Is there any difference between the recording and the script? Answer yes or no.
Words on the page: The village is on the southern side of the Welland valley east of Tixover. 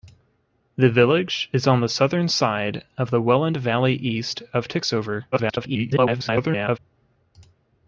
yes